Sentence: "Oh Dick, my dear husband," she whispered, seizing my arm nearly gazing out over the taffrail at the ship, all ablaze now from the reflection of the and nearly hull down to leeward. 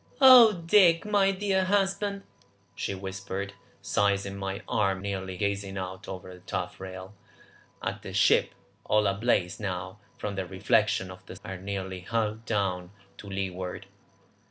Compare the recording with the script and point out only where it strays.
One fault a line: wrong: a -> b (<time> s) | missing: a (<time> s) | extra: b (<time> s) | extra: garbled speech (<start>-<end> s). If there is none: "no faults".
no faults